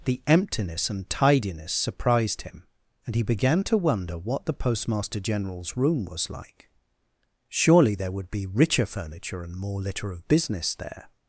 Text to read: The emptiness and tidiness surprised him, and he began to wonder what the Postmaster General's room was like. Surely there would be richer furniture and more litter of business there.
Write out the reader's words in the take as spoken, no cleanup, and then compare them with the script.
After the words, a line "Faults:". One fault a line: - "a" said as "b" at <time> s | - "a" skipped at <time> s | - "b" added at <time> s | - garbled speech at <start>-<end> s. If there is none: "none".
The emptiness and tidiness surprised him, and he began to wonder what the Postmaster General's room was like. Surely there would be richer furniture and more litter of business there.
Faults:
none